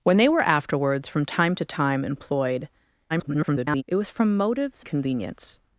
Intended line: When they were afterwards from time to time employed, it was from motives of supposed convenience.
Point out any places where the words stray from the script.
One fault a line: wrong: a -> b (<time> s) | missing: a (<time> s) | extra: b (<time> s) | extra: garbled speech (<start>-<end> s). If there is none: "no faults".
extra: garbled speech (3.1-3.8 s)
missing: of supposed (4.8 s)